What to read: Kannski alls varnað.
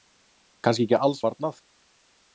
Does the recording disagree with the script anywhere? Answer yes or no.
yes